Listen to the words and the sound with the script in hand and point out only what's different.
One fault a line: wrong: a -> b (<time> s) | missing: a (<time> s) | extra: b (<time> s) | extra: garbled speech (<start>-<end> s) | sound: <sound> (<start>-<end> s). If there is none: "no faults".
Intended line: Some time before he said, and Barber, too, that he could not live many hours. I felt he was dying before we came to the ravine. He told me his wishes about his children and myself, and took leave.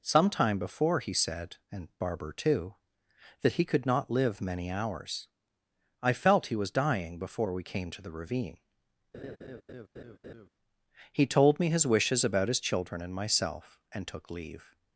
sound: laugh (9.1-10.5 s)